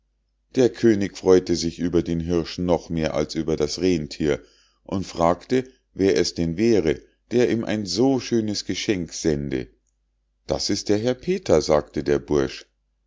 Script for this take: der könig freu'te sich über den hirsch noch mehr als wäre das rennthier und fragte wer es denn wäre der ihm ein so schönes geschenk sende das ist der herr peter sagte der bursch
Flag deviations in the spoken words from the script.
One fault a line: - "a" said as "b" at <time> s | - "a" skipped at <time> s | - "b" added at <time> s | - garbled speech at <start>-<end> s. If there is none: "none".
- "wäre" said as "über" at 3.4 s